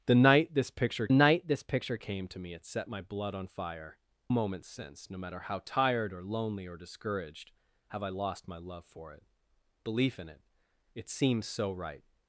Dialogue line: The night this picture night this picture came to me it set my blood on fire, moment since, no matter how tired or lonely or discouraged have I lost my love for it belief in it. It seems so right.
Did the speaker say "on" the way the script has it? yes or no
yes